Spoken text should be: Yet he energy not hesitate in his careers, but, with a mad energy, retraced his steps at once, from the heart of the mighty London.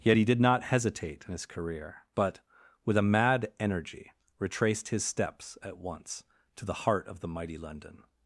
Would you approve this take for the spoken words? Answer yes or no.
no